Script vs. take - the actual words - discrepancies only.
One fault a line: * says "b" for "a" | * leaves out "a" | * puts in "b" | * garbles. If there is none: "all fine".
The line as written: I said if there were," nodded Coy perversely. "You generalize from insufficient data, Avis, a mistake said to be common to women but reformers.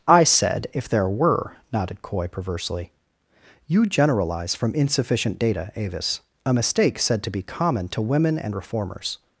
* says "and" for "but"